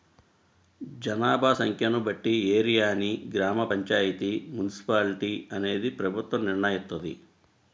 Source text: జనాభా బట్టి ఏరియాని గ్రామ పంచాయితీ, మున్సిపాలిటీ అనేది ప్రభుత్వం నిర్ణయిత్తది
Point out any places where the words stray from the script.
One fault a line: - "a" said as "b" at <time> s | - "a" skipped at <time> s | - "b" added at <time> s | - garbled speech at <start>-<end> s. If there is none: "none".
- "సంఖ్యను" added at 1.5 s